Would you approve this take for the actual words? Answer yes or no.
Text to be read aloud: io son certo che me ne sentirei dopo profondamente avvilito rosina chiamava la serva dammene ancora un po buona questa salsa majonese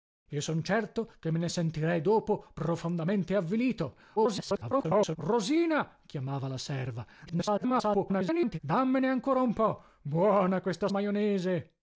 no